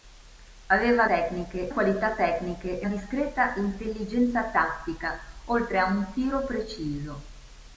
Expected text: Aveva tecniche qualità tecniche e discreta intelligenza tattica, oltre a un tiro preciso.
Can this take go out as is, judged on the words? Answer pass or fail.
pass